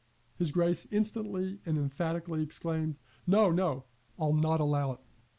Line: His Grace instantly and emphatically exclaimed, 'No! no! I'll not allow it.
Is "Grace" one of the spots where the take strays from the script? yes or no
no